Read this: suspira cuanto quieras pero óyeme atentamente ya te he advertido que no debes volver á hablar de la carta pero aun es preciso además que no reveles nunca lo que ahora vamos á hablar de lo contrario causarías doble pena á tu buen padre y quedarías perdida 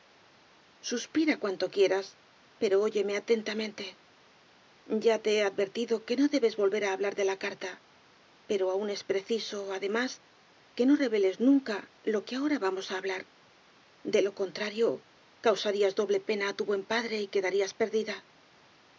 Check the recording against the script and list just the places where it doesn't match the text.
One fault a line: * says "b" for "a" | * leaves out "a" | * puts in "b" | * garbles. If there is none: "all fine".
all fine